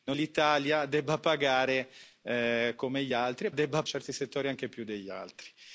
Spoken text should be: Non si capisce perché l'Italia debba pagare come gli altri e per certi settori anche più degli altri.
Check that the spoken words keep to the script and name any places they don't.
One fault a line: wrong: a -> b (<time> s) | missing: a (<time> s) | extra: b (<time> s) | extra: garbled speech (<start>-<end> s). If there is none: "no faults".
missing: si capisce perché (0.1 s)
wrong: per -> debba (3.5 s)